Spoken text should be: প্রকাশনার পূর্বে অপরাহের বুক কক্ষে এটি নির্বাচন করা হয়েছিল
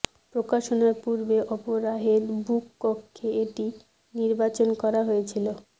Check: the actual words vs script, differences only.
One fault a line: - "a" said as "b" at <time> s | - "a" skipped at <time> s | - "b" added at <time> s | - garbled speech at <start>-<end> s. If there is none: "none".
none